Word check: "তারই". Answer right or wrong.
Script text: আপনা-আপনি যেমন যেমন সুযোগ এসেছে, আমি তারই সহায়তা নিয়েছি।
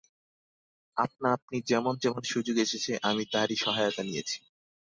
right